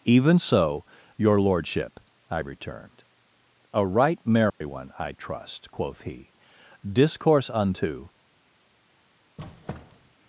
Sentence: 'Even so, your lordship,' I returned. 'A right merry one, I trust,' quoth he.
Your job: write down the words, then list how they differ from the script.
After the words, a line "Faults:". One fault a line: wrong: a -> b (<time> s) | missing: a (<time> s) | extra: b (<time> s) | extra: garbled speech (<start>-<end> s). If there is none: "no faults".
'Even so, your lordship,' I returned. 'A right merry one, I trust,' quoth he. 'Discourse unto
Faults:
extra: Discourse unto (6.8 s)